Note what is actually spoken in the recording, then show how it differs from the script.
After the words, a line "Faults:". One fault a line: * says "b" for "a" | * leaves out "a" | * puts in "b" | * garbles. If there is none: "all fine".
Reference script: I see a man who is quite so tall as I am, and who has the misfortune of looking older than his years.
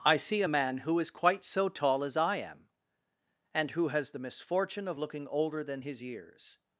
I see a man who is quite so tall as I am, and who has the misfortune of looking older than his years.
Faults:
all fine